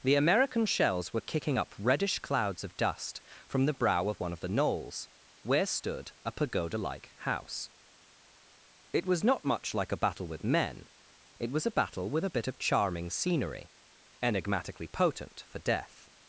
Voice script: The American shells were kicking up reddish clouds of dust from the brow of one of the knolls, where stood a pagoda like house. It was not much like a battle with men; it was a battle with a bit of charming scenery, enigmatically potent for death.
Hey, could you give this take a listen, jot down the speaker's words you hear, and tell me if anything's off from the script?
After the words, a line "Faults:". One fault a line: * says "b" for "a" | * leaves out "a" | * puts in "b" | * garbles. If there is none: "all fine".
The American shells were kicking up reddish clouds of dust from the brow of one of the knolls, where stood a pagoda like house. It was not much like a battle with men; it was a battle with a bit of charming scenery, enigmatically potent for death.
Faults:
all fine